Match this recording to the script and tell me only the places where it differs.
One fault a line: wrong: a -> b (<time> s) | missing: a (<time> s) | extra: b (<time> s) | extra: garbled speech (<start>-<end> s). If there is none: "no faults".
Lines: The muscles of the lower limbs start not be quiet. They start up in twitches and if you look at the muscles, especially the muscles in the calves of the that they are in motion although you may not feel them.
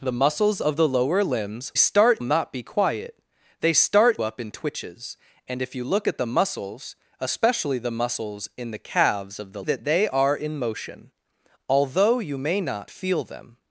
no faults